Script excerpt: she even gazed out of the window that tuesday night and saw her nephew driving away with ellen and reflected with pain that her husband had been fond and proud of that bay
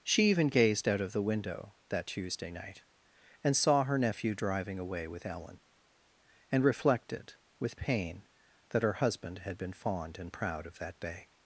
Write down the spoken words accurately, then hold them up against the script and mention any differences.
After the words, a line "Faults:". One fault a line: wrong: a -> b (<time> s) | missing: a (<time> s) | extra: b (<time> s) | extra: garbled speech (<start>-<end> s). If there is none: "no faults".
she even gazed out of the window that tuesday night and saw her nephew driving away with ellen and reflected with pain that her husband had been fond and proud of that bay
Faults:
no faults